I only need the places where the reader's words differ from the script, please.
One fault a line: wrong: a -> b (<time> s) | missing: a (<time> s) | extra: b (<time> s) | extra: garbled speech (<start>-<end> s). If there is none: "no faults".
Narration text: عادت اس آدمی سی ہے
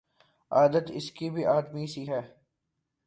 extra: کی بھی (1.1 s)